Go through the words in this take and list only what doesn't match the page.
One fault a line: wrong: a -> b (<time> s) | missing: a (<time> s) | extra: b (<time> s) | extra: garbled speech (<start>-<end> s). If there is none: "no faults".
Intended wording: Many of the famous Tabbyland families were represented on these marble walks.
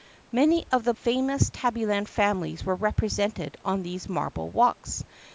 no faults